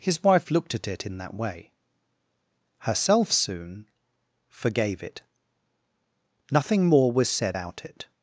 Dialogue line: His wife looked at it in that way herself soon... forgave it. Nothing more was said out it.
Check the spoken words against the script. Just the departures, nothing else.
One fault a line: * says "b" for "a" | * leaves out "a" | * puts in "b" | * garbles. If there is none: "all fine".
all fine